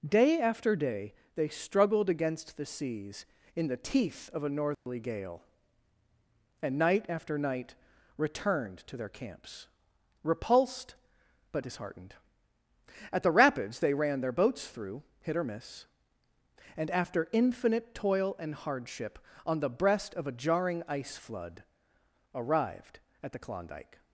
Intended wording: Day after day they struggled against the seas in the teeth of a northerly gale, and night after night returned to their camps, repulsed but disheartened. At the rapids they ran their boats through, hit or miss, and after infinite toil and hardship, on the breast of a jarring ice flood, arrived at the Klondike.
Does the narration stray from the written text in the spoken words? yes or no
no